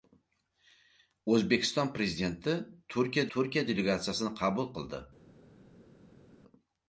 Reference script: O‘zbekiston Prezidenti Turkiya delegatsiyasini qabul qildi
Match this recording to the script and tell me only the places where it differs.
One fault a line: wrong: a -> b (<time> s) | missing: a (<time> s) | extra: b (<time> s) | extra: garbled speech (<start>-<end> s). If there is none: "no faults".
extra: Turkiya (3.4 s)